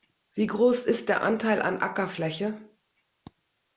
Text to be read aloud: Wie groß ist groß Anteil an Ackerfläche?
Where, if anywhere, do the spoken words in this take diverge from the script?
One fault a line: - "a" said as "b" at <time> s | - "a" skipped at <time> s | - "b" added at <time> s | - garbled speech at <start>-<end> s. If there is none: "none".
- "groß" said as "der" at 1.1 s